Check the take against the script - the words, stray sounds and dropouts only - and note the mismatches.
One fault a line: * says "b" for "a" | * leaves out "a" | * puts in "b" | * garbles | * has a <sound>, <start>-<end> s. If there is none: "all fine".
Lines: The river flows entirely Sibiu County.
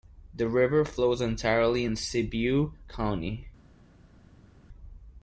* puts in "in"